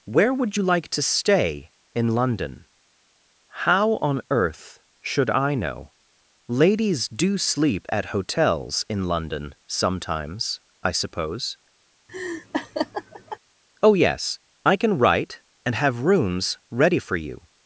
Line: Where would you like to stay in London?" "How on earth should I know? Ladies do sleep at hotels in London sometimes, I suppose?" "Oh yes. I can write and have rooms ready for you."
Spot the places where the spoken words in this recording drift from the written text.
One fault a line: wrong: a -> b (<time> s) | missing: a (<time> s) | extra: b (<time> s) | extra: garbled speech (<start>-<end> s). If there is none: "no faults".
no faults